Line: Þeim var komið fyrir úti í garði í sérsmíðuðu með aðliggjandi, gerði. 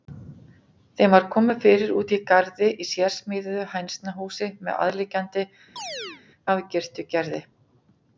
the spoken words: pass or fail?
fail